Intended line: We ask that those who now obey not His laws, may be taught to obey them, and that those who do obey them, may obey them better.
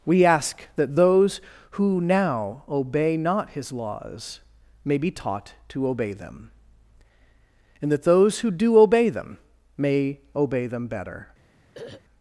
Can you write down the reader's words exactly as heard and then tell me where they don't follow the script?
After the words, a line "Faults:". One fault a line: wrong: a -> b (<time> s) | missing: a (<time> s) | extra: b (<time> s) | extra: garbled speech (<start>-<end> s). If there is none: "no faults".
We ask that those who now obey not His laws, may be taught to obey them, and that those who do obey them, may obey them better.
Faults:
no faults